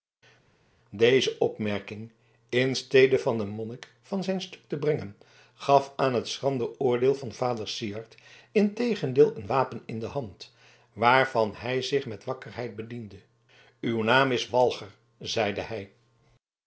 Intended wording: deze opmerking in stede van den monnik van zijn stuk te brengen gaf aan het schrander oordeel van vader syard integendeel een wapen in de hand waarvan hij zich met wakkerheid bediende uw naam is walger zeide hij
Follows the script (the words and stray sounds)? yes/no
yes